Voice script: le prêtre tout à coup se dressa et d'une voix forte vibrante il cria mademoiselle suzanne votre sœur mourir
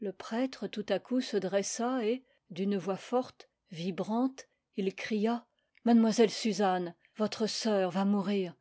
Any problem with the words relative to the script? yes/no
yes